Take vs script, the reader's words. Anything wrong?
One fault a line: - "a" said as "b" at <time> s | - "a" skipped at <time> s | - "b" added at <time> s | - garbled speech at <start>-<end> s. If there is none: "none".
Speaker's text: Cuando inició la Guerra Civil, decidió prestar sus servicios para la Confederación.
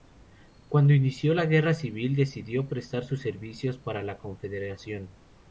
none